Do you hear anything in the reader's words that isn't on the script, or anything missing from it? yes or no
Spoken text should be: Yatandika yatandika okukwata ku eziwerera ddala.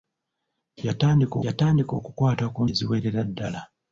no